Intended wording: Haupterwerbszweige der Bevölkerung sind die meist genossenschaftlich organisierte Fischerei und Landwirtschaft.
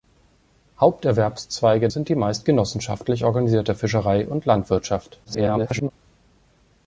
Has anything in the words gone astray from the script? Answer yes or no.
yes